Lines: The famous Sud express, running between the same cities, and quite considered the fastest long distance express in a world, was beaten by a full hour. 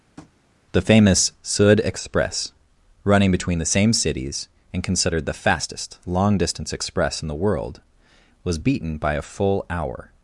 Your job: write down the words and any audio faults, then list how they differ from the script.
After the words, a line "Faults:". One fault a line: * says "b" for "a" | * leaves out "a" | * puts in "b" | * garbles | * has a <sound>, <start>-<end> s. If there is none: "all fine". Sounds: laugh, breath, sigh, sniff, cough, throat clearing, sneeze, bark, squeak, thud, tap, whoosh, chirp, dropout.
The famous Sud express, running between the same cities, and considered the fastest long distance express in the world, was beaten by a full hour.
Faults:
* has a tap, 0.2-0.3 s
* leaves out "quite"
* says "the" for "a"